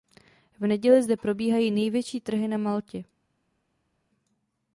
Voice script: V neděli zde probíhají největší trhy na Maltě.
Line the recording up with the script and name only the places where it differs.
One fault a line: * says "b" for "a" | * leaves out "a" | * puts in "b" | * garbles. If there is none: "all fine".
all fine